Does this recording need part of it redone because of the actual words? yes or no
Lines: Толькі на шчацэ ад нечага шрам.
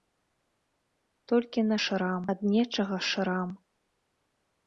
yes